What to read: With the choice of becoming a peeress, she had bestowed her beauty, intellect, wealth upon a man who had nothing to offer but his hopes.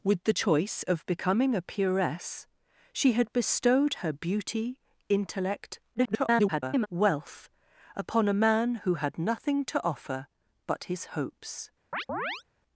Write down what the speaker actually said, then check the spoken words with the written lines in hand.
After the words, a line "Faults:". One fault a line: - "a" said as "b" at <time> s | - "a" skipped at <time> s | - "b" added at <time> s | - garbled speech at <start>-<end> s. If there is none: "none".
With the choice of becoming a peeress, she had bestowed her beauty, intellect, [garbled] wealth upon a man who had nothing to offer but his hopes.
Faults:
- garbled speech at 5.9-6.9 s